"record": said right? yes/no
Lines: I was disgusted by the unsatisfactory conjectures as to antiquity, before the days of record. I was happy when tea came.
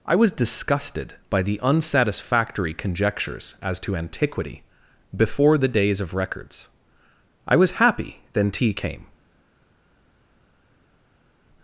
no